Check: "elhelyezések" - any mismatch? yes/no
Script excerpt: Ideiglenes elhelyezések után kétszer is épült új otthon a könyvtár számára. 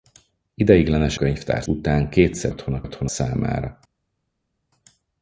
yes